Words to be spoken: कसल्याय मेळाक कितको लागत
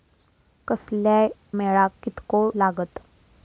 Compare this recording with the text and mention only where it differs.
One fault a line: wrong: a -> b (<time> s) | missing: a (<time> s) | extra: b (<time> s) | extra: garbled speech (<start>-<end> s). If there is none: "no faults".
no faults